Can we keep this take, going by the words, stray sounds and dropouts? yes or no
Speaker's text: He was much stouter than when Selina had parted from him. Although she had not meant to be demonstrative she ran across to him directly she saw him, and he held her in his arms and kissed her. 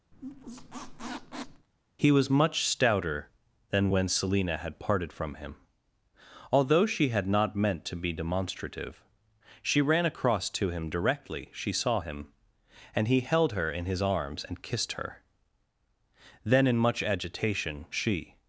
no